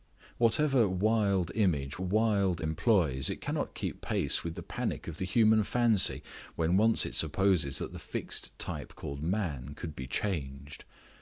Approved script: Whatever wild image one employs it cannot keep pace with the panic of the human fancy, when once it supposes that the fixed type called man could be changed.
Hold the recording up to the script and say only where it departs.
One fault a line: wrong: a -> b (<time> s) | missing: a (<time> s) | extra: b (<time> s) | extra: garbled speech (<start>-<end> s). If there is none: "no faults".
wrong: one -> wild (2.0 s)